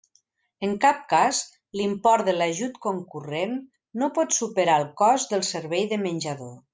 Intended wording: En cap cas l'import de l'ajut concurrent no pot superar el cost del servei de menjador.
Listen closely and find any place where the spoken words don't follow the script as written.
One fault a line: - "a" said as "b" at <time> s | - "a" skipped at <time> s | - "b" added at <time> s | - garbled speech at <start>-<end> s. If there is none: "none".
none